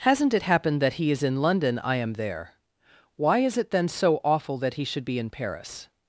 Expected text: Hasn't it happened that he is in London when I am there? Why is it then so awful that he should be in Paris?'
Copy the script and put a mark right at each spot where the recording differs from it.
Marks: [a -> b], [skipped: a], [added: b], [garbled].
Hasn't it happened that he is in London [skipped: when] I am there? Why is it then so awful that he should be in Paris?'